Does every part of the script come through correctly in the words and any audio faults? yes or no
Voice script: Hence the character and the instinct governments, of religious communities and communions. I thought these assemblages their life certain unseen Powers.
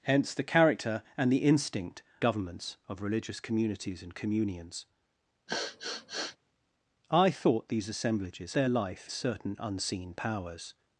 no